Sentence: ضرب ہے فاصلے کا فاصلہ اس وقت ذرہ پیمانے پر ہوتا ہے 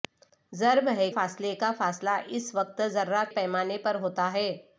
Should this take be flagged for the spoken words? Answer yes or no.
no